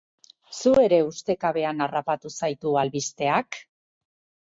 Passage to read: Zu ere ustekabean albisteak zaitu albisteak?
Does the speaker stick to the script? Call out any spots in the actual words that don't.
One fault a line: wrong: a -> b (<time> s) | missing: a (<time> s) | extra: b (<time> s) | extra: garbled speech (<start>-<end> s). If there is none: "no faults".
wrong: albisteak -> harrapatu (1.9 s)